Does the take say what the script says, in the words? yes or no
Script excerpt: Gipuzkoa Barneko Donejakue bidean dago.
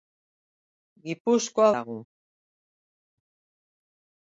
no